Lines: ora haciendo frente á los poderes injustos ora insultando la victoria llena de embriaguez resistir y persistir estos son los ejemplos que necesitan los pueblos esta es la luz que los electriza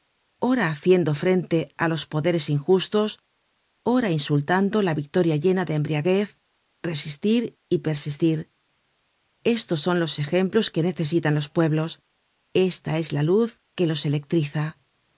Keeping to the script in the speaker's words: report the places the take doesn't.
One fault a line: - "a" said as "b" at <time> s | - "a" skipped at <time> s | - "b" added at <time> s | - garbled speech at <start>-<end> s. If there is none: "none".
none